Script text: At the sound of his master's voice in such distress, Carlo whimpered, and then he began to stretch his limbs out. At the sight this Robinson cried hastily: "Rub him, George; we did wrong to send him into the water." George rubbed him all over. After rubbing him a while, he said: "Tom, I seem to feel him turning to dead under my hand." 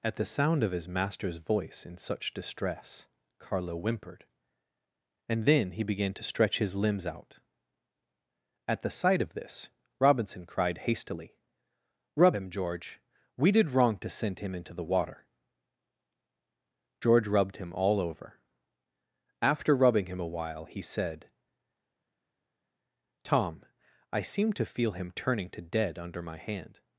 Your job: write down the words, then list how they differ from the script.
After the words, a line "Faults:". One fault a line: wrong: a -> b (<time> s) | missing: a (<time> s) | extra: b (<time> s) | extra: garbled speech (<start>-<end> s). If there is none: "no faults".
At the sound of his master's voice in such distress, Carlo whimpered, and then he began to stretch his limbs out. At the sight of this Robinson cried hastily: "Rub him, George; we did wrong to send him into the water." George rubbed him all over. After rubbing him a while, he said: "Tom, I seem to feel him turning to dead under my hand."
Faults:
extra: of (9.2 s)